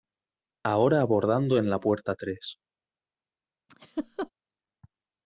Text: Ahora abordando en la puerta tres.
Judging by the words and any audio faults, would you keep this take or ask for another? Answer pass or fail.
fail